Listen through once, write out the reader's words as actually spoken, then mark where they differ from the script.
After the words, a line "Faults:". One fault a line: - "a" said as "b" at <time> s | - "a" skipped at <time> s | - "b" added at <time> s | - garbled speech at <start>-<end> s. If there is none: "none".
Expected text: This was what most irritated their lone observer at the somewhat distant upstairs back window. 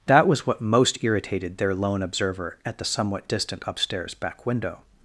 That was what most irritated their lone observer at the somewhat distant upstairs back window.
Faults:
- "This" said as "That" at 0.1 s